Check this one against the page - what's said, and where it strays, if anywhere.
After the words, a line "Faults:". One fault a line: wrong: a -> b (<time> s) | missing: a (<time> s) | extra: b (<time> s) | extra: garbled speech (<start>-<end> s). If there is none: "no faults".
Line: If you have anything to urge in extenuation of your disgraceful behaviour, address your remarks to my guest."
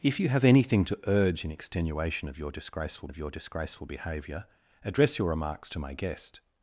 If you have anything to urge in extenuation of your disgraceful of your disgraceful behaviour, address your remarks to my guest."
Faults:
extra: of your disgraceful (3.1 s)